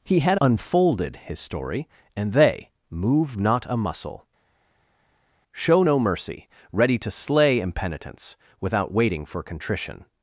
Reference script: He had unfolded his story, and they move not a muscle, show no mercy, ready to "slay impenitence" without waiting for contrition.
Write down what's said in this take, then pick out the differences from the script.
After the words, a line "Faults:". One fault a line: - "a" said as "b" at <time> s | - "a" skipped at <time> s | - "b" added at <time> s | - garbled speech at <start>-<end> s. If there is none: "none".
He had unfolded his story, and they move not a muscle, show no mercy, ready to "slay impenitence" without waiting for contrition.
Faults:
none